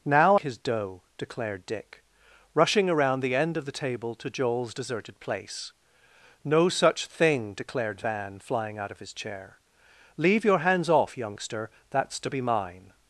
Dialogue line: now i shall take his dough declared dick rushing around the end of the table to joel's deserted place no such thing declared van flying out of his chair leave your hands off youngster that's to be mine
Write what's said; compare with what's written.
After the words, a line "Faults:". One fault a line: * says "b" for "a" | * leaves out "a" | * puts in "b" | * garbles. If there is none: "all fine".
now his dough declared dick rushing around the end of the table to joel's deserted place no such thing declared van flying out of his chair leave your hands off youngster that's to be mine
Faults:
* leaves out "i shall take"